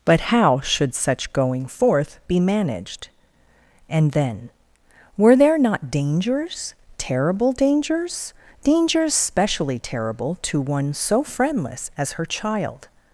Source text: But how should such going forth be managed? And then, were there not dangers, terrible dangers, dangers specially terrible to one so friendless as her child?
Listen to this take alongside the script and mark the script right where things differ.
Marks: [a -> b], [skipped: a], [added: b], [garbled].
But how should such going forth be managed? And then, were there not dangers, terrible dangers, dangers specially terrible to one so friendless as her child?